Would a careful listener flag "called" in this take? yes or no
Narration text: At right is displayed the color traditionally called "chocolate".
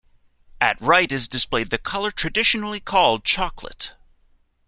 no